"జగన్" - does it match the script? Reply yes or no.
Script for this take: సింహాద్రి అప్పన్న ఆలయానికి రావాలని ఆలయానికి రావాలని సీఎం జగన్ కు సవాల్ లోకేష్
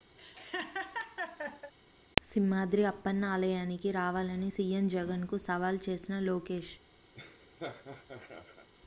yes